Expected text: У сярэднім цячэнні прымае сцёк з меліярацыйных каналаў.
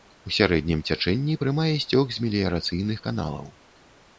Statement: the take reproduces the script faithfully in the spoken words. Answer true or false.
true